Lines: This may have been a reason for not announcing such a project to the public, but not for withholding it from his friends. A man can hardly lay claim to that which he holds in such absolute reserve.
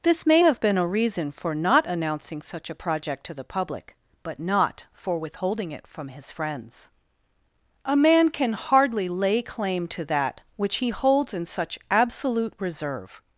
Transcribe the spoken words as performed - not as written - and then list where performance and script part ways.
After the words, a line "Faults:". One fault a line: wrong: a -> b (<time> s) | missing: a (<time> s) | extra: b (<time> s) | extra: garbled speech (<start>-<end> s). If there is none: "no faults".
This may have been a reason for not announcing such a project to the public, but not for withholding it from his friends. A man can hardly lay claim to that which he holds in such absolute reserve.
Faults:
no faults